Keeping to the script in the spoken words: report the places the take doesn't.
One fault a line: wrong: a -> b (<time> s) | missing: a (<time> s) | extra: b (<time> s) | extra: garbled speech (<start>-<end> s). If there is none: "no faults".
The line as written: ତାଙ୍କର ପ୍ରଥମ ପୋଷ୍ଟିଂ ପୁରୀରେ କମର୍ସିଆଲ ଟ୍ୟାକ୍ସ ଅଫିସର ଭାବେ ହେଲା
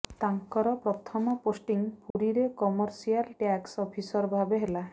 no faults